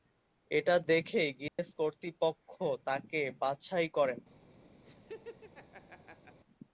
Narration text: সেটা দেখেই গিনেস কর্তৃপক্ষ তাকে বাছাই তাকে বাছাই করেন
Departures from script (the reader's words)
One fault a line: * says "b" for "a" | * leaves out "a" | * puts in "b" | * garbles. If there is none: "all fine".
* says "এটা" for "সেটা"
* leaves out "তাকে বাছাই"